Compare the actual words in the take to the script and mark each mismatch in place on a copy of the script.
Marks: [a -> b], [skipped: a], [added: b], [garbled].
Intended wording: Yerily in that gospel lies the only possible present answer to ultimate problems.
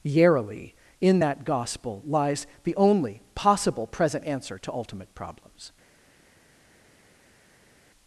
Yerily in that gospel lies the only possible present answer to ultimate problems.